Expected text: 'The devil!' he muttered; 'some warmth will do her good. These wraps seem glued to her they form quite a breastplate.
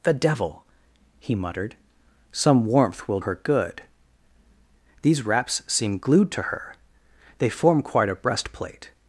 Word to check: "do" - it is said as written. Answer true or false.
false